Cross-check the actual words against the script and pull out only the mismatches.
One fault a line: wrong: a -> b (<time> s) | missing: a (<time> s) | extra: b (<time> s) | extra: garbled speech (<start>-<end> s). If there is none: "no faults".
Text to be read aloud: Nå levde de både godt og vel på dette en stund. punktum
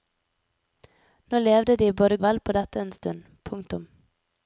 missing: godt (2.2 s)